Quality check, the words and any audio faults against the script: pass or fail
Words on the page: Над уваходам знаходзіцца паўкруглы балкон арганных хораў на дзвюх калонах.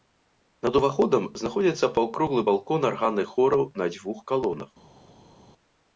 pass